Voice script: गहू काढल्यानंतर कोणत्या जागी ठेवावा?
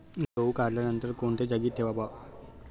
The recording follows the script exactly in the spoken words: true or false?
true